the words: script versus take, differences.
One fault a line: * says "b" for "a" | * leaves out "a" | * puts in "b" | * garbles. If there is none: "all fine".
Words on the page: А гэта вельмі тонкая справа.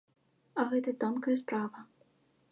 * leaves out "вельмі"